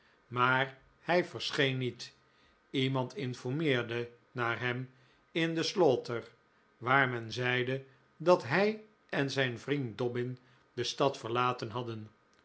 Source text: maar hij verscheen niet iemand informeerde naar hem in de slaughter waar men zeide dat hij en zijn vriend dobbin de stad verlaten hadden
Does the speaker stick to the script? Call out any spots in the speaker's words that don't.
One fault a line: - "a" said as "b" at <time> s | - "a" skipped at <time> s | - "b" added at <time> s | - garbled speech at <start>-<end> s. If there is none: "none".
none